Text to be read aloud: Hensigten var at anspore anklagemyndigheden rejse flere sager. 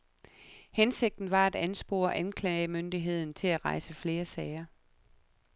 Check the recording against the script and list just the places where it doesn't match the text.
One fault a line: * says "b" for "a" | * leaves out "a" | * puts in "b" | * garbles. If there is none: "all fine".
* puts in "til at"